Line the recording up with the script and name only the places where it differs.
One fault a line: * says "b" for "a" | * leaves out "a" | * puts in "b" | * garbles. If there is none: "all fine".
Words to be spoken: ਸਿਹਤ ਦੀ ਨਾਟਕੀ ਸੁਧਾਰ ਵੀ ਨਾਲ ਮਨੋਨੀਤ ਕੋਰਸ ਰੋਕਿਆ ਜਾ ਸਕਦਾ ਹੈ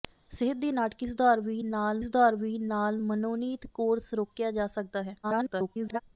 * puts in "ਸੁਧਾਰ ਵੀ ਨਾਲ"
* garbles